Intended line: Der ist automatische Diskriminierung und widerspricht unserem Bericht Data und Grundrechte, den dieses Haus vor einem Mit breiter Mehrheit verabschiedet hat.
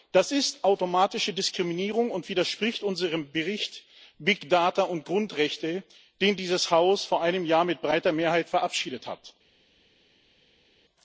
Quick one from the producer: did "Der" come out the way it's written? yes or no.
no